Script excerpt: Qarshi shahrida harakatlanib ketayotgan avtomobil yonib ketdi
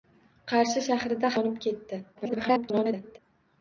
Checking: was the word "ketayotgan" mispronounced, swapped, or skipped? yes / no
yes